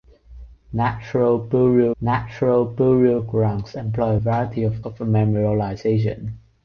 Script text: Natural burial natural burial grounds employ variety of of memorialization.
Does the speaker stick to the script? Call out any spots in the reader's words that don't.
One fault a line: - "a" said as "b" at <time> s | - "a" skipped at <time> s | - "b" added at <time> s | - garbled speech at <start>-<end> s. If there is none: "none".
none